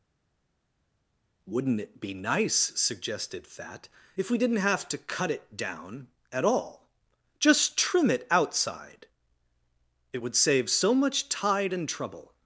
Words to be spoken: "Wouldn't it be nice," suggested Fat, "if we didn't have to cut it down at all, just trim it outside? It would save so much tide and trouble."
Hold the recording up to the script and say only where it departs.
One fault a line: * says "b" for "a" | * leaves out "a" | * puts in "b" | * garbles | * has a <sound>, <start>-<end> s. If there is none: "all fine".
all fine